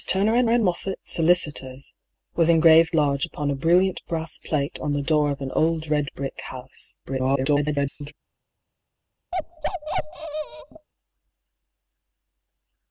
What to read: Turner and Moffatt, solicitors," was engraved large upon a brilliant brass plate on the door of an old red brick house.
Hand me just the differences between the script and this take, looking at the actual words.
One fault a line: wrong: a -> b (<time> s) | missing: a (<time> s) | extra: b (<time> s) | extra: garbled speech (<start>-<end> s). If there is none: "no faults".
extra: and (0.5 s)
extra: garbled speech (7.0-8.1 s)